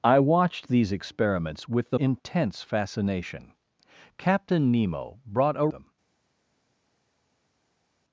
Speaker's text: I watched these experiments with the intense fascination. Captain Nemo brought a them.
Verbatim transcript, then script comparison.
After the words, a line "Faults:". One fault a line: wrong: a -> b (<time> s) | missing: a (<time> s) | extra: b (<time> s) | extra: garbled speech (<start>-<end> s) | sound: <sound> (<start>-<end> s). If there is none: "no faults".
I watched these experiments with the intense fascination. Captain Nemo brought a them.
Faults:
no faults